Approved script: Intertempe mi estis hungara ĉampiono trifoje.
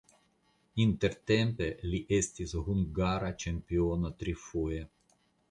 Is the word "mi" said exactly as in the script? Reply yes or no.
no